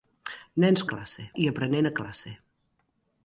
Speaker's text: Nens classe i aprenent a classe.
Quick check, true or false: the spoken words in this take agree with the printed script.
true